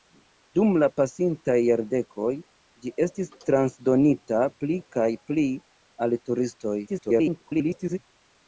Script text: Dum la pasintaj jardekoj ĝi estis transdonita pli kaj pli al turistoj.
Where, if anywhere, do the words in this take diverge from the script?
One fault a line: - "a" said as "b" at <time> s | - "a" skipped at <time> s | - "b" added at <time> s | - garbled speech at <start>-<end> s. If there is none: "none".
- garbled speech at 6.9-8.0 s